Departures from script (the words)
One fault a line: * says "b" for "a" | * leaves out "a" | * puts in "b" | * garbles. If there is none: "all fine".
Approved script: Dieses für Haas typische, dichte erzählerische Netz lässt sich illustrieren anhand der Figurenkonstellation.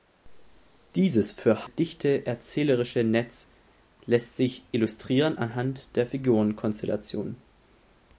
* leaves out "Haas typische"